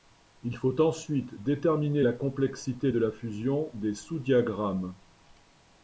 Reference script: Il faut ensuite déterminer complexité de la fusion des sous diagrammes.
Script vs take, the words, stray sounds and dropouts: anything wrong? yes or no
yes